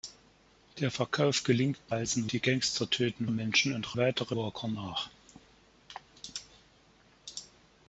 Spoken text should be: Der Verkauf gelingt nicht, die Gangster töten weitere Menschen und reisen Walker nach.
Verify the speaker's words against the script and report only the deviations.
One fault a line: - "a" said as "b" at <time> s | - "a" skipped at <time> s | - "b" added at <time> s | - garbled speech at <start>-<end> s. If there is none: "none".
- "nicht" said as "reisen" at 1.9 s
- "weitere" skipped at 3.3 s
- "reisen" said as "weitere" at 3.9 s